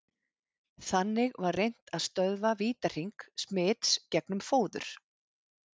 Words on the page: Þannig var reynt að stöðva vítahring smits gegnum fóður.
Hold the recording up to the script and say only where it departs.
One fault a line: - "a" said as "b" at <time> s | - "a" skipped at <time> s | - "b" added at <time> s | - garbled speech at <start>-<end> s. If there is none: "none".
none